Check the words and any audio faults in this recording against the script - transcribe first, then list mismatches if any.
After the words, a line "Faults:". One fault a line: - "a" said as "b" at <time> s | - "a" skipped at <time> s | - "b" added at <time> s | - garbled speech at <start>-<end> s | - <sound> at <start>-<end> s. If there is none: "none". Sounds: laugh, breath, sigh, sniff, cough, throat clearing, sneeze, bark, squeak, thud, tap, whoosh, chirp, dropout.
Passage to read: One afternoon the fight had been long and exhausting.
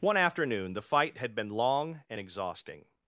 One afternoon the fight had been long and exhausting.
Faults:
none